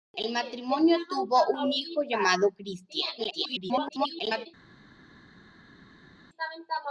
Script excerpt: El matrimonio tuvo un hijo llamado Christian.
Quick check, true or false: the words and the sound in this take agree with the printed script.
false